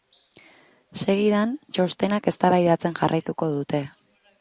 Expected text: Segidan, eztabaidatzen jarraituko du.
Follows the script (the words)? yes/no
no